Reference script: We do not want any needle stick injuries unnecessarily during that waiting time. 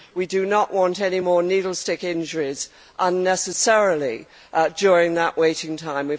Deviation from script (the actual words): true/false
true